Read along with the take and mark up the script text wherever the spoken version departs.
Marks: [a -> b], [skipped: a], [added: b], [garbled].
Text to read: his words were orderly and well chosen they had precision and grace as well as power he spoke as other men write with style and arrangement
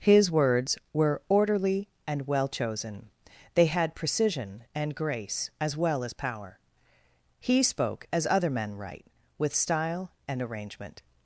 his words were orderly and well chosen they had precision and grace as well as power he spoke as other men write with style and arrangement